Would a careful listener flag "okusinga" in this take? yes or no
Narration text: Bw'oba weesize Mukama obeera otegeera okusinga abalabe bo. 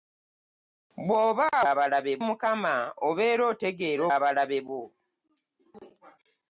yes